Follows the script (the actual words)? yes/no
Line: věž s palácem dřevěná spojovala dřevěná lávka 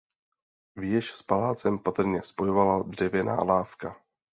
no